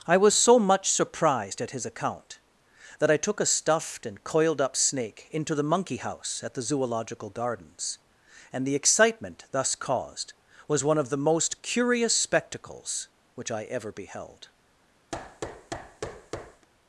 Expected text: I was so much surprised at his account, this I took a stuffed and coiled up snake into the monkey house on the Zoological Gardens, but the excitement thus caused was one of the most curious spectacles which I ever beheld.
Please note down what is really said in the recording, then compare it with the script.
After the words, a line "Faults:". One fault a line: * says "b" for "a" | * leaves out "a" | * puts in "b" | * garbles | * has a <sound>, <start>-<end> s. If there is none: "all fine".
I was so much surprised at his account, that I took a stuffed and coiled up snake into the monkey house at the Zoological Gardens, and the excitement thus caused was one of the most curious spectacles which I ever beheld.
Faults:
* says "that" for "this"
* says "at" for "on"
* says "and" for "but"
* has a thud, 15.1-16.7 s